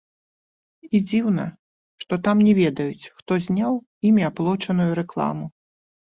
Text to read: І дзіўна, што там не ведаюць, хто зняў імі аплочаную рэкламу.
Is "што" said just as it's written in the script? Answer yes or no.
yes